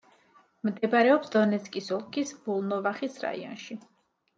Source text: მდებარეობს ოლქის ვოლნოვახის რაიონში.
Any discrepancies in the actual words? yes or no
yes